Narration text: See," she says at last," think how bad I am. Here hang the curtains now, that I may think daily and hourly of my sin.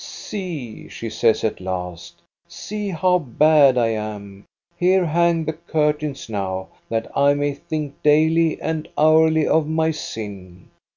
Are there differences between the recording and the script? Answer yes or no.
yes